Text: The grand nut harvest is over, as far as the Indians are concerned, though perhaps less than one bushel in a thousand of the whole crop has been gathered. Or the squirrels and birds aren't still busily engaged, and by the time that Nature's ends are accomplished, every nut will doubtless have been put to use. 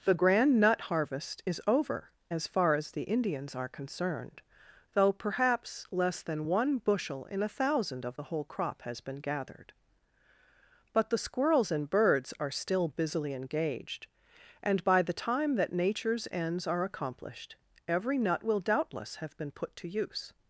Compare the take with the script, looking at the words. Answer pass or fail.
fail